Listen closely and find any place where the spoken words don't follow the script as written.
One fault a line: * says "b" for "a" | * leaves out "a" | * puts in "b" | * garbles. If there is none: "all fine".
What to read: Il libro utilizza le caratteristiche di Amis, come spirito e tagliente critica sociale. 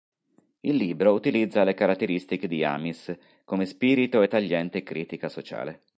all fine